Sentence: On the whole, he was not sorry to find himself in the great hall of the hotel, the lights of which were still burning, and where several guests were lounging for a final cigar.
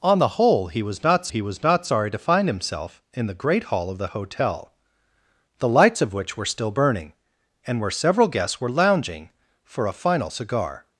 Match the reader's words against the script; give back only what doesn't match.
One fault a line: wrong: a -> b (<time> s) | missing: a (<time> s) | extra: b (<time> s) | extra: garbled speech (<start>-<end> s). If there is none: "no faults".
extra: he was not (1.3 s)